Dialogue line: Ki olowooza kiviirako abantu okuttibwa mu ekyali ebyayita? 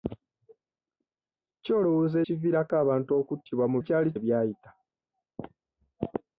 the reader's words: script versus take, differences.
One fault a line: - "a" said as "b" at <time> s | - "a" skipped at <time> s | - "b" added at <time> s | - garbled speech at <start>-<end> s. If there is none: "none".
none